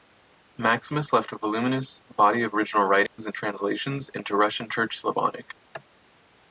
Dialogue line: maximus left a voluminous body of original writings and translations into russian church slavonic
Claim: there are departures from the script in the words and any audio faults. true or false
true